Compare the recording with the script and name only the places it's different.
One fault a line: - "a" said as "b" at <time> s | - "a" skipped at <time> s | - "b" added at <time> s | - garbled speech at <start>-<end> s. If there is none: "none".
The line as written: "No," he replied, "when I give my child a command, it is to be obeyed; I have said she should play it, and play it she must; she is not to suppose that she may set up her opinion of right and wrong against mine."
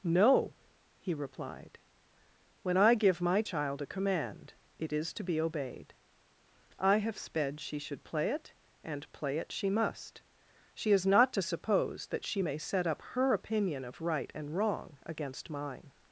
- "said" said as "sped" at 7.2 s